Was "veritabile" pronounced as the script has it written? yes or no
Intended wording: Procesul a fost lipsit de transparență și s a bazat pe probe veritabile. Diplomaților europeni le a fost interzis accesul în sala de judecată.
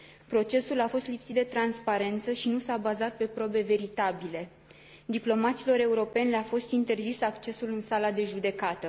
yes